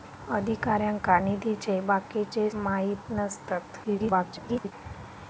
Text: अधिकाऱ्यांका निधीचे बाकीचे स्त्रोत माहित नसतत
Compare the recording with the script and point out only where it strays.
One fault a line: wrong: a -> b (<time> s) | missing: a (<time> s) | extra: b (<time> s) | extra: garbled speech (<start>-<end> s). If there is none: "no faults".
missing: स्त्रोत (2.5 s)
extra: garbled speech (3.8-4.7 s)